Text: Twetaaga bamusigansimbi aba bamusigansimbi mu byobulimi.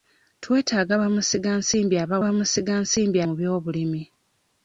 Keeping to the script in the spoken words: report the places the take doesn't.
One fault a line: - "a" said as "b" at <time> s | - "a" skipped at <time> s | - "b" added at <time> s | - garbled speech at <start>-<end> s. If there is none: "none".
none